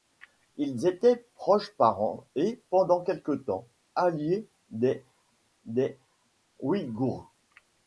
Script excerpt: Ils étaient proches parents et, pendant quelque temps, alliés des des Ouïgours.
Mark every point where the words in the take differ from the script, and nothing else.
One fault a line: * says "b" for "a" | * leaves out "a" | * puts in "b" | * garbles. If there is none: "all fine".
all fine